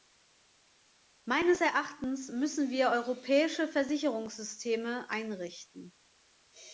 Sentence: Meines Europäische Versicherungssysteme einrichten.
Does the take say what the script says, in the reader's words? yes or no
no